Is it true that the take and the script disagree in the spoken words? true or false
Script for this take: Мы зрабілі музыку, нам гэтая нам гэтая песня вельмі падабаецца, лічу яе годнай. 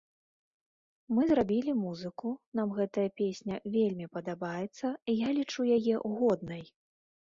true